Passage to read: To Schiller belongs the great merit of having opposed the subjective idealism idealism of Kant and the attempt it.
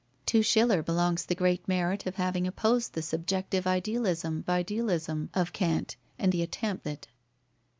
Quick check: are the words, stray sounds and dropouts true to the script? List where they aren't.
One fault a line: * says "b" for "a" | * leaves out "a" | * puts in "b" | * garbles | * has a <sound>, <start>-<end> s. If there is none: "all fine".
all fine